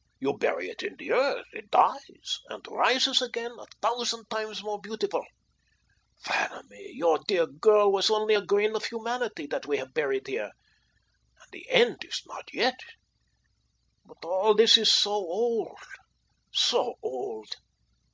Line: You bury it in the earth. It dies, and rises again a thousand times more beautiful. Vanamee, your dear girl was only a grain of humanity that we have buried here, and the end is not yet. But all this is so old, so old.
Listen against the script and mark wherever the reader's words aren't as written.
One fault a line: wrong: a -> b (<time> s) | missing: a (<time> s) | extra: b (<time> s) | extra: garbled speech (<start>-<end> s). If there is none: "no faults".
no faults